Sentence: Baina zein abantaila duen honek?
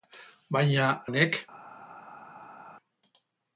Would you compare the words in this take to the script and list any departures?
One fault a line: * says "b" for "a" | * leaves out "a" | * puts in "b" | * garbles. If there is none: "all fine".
* leaves out "zein abantaila duen"